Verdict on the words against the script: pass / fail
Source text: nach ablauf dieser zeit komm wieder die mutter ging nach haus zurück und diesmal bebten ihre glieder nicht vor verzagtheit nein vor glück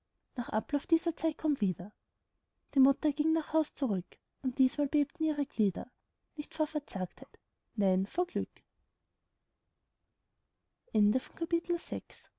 pass